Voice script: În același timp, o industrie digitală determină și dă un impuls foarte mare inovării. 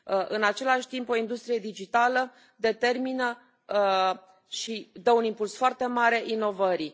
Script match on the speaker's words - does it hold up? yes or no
yes